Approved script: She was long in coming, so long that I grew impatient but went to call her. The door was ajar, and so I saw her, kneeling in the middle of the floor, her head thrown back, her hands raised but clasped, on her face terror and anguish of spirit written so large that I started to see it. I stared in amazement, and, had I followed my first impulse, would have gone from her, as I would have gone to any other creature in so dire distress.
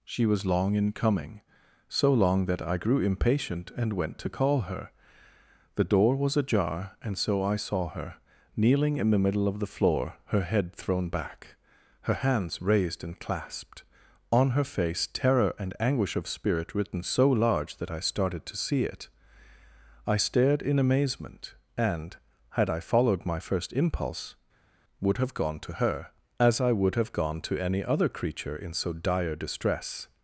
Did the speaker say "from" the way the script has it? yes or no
no